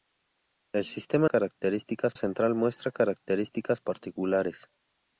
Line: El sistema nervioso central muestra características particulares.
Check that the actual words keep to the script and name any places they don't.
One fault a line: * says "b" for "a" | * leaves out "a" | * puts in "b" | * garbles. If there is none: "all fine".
* says "características" for "nervioso"